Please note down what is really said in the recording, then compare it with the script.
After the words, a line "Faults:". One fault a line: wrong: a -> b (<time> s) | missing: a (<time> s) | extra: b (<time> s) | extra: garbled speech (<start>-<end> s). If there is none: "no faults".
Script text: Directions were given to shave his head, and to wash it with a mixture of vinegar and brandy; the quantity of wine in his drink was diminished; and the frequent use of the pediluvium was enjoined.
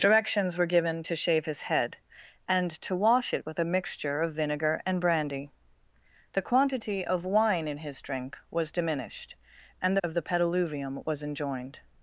Directions were given to shave his head, and to wash it with a mixture of vinegar and brandy; the quantity of wine in his drink was diminished; and of the pediluvium was enjoined.
Faults:
missing: the frequent use (10.0 s)